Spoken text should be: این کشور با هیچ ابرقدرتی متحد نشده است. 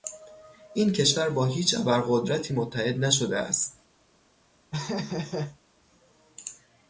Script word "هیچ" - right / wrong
right